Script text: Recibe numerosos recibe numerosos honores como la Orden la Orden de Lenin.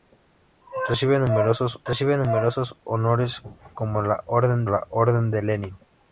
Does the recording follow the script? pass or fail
pass